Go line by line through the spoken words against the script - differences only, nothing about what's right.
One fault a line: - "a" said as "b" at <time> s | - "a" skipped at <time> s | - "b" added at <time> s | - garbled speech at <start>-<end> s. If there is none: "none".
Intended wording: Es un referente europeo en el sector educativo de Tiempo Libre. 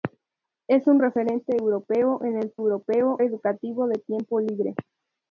- "sector" said as "europeo" at 2.6 s